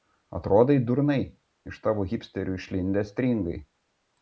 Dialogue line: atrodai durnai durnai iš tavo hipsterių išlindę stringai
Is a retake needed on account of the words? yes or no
yes